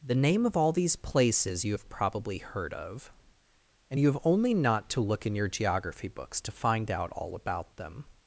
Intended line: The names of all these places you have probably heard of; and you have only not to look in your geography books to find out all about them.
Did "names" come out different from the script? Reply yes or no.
yes